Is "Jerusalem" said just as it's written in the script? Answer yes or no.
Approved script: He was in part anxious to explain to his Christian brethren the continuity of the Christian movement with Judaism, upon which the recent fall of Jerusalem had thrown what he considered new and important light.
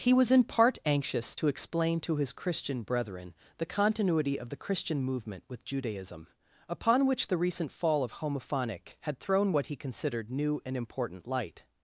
no